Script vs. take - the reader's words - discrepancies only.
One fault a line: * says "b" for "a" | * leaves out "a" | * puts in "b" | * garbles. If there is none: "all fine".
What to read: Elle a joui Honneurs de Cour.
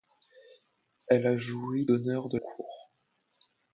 all fine